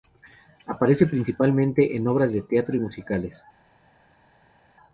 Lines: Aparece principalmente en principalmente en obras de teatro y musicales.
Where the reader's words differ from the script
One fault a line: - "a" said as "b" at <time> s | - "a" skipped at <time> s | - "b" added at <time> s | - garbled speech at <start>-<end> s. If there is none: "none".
- "principalmente en" skipped at 2.1 s